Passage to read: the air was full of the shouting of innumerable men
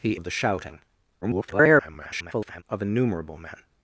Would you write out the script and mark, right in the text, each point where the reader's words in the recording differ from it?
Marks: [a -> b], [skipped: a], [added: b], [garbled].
the [skipped: air was full] of the shouting [garbled] of innumerable men